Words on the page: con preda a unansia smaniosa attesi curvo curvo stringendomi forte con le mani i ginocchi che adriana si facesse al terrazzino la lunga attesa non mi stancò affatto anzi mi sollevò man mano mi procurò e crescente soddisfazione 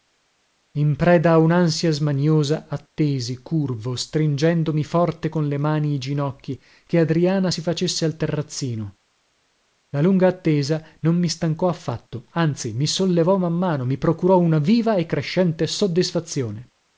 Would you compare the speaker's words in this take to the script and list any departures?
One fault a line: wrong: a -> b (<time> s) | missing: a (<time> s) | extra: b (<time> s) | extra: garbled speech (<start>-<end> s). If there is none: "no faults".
wrong: con -> in (0.8 s)
missing: curvo (4.0 s)
extra: una viva (14.4 s)